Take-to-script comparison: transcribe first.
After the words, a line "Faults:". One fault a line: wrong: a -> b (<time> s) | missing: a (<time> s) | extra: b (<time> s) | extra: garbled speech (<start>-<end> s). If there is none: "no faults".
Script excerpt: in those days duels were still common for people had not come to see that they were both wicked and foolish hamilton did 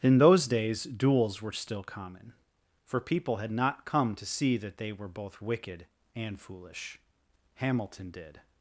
in those days duels were still common for people had not come to see that they were both wicked and foolish hamilton did
Faults:
no faults